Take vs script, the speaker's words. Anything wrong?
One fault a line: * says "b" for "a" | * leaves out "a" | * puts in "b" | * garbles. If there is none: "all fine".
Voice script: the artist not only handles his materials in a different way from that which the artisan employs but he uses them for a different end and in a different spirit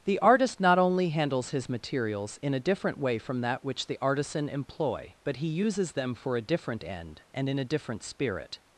* says "employ" for "employs"